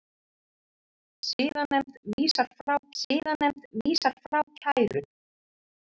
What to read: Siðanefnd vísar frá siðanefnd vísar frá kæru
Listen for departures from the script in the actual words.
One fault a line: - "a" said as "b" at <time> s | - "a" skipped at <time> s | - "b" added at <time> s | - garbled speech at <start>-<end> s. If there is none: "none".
none